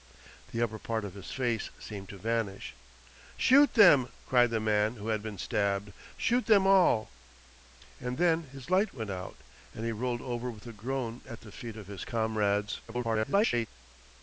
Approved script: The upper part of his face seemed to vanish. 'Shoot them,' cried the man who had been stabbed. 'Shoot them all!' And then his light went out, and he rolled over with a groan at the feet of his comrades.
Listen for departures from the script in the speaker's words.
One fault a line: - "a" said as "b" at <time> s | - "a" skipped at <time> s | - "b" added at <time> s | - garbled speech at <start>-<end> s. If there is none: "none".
- garbled speech at 12.9-13.7 s